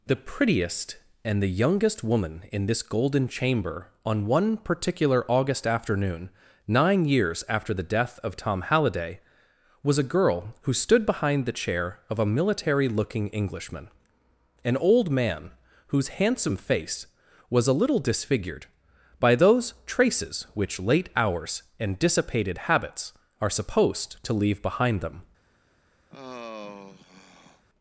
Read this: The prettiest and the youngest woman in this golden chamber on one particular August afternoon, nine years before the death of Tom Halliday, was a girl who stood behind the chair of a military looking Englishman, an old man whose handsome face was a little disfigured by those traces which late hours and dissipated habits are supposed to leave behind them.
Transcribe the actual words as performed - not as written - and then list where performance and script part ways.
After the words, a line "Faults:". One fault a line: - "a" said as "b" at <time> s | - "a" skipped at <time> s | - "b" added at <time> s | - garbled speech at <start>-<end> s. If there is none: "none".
The prettiest and the youngest woman in this golden chamber on one particular August afternoon, nine years after the death of Tom Halliday, was a girl who stood behind the chair of a military looking Englishman, an old man whose handsome face was a little disfigured by those traces which late hours and dissipated habits are supposed to leave behind them.
Faults:
- "before" said as "after" at 7.5 s